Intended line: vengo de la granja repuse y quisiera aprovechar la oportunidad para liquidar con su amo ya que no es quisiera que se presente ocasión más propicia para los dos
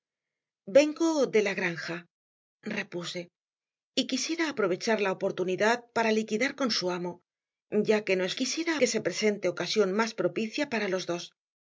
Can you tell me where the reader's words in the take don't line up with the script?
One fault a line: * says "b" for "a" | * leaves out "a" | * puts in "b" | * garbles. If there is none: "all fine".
all fine